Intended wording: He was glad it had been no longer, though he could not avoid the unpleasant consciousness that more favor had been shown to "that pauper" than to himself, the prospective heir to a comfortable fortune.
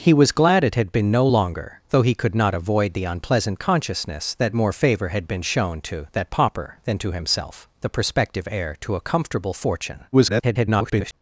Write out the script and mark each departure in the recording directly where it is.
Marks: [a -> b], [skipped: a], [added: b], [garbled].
He was glad it had been no longer, though he could not avoid the unpleasant consciousness that more favor had been shown to "that pauper" than to himself, the prospective heir to a comfortable fortune. [garbled]